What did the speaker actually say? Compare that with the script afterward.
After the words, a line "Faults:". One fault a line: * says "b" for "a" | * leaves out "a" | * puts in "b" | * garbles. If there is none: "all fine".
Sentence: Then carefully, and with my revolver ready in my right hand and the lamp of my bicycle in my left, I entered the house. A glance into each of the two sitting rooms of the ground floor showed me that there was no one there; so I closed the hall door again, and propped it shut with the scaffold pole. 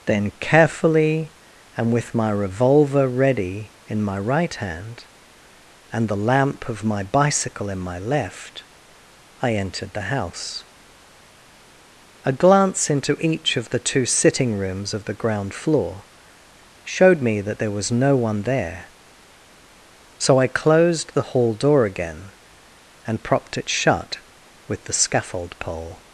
Then carefully, and with my revolver ready in my right hand and the lamp of my bicycle in my left, I entered the house. A glance into each of the two sitting rooms of the ground floor showed me that there was no one there; so I closed the hall door again, and propped it shut with the scaffold pole.
Faults:
all fine